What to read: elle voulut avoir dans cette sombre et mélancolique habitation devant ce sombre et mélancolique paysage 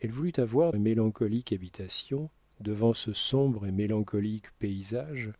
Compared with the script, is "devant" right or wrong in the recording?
right